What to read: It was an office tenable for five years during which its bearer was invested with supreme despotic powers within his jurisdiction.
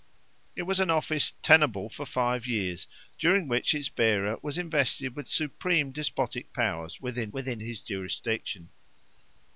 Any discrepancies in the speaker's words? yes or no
yes